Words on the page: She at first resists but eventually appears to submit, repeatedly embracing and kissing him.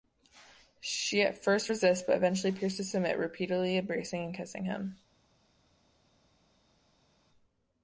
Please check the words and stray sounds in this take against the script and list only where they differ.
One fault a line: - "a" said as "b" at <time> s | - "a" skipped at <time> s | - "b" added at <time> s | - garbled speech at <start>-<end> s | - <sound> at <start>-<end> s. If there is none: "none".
none